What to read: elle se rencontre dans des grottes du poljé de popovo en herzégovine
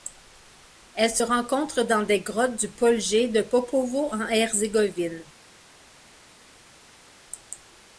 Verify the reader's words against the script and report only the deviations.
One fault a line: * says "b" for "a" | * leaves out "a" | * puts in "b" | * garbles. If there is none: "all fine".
all fine